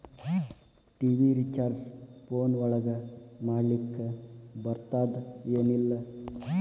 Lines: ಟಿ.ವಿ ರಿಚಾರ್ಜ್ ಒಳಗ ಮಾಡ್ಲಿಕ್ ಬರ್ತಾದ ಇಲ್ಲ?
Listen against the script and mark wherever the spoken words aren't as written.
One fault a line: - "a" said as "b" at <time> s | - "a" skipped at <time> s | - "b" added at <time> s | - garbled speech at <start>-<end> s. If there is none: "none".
- "ಫೋನ್" added at 2.3 s
- "ಏನ್" added at 5.6 s